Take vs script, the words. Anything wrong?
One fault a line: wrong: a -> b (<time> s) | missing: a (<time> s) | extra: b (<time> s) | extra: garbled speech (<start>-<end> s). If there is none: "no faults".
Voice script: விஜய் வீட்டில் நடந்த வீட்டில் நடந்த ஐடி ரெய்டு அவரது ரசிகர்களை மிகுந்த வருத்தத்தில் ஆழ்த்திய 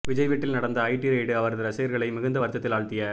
missing: வீட்டில் நடந்த (0.8 s)